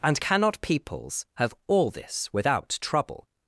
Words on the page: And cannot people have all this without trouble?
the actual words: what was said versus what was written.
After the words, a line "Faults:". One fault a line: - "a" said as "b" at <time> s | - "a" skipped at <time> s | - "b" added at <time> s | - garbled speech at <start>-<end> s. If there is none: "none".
And cannot peoples have all this without trouble?
Faults:
- "people" said as "peoples" at 0.6 s